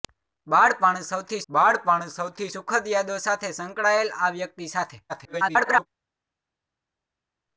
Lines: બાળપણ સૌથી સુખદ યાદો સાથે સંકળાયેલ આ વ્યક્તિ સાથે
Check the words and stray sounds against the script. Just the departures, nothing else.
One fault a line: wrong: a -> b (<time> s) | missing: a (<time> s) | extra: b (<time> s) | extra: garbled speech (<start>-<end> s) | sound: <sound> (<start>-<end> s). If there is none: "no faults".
extra: બાળપણ સૌથી (1.5 s)
extra: garbled speech (5.1-5.9 s)